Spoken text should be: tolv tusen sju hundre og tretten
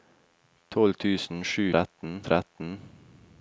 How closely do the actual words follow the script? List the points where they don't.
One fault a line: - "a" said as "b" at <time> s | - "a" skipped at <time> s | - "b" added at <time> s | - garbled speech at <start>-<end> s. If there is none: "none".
- "hundre" said as "tretten" at 1.7 s